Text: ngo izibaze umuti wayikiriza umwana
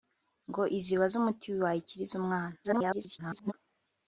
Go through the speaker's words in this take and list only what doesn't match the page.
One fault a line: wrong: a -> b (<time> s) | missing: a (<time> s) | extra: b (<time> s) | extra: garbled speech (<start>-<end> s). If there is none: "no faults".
extra: garbled speech (2.6-3.5 s)